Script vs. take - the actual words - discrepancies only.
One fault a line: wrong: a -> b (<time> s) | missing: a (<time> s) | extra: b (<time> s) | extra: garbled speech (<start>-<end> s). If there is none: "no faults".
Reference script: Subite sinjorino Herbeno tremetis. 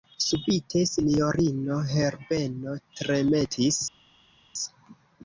no faults